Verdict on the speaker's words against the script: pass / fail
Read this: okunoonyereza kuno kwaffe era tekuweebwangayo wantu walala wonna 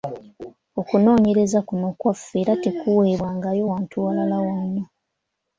pass